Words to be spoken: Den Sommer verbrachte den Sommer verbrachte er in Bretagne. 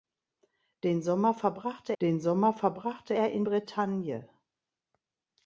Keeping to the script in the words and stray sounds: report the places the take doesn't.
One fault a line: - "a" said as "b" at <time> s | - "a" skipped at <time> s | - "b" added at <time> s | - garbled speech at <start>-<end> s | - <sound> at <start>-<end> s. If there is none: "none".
none